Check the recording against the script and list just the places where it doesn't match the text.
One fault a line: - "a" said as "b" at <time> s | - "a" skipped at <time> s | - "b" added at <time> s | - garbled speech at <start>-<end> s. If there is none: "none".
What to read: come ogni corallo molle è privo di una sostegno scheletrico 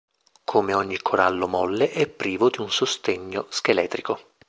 - "una" said as "un" at 2.6 s